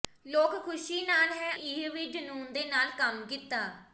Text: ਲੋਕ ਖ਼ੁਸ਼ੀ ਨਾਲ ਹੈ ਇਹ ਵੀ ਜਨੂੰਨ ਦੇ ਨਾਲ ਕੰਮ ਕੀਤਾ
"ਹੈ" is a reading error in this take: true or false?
false